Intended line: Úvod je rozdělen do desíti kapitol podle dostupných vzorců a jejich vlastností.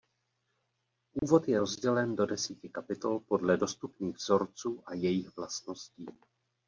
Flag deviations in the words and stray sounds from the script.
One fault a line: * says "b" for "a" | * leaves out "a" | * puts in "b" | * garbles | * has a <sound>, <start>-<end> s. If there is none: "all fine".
* has a dropout, 1.2-1.2 s